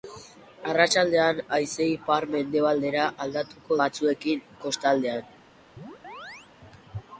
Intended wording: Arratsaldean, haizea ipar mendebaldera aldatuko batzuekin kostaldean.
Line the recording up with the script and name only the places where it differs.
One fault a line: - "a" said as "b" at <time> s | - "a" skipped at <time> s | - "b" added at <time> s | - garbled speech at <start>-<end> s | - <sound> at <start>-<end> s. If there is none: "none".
- chirp at 5.8-6.5 s